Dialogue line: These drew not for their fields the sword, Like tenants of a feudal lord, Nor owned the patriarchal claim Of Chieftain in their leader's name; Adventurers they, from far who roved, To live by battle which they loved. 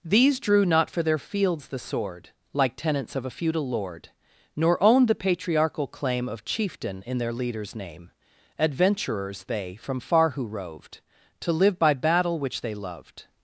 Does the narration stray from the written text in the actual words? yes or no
no